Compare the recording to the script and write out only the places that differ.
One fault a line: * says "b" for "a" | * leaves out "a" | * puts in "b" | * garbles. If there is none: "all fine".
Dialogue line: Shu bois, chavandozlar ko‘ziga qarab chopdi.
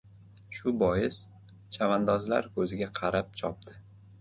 all fine